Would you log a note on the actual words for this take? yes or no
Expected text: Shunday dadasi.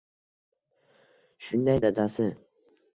no